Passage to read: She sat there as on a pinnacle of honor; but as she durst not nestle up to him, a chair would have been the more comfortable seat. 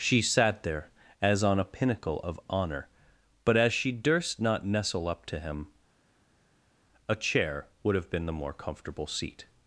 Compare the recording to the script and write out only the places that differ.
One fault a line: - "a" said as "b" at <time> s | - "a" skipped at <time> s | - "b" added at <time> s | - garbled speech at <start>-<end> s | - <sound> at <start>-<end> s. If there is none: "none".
none